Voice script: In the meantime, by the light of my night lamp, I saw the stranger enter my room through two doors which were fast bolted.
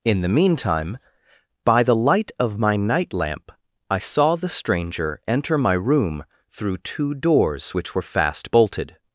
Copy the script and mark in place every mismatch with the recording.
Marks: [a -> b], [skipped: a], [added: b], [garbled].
In the meantime, by the light of my night lamp, I saw the stranger enter my room through two doors which were fast bolted.